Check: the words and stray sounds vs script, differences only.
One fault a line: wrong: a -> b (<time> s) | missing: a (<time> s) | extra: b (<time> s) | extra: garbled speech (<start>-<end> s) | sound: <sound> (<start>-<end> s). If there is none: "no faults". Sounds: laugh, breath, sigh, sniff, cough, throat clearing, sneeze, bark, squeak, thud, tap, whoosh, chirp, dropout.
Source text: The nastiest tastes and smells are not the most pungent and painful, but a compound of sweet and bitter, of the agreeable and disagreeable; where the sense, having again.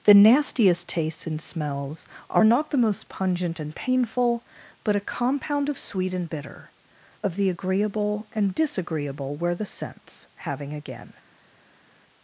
no faults